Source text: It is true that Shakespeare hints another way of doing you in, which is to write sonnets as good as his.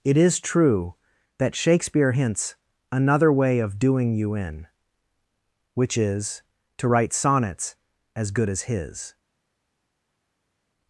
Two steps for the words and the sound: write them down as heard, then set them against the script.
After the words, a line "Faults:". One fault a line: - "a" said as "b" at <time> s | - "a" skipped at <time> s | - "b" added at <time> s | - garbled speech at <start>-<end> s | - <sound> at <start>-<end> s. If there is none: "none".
It is true that Shakespeare hints another way of doing you in, which is to write sonnets as good as his.
Faults:
none